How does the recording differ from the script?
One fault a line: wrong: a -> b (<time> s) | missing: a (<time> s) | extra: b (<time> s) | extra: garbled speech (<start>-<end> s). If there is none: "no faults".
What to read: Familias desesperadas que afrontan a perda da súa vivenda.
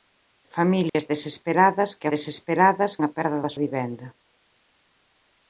wrong: afrontan -> desesperadas (2.1 s)
missing: súa (3.5 s)